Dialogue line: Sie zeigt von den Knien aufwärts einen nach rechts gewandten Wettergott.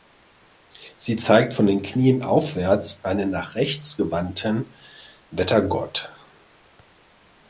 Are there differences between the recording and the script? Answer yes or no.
no